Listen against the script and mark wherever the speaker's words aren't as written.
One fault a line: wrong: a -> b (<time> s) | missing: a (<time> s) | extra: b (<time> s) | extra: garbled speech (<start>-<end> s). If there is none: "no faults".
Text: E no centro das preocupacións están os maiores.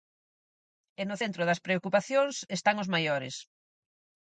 no faults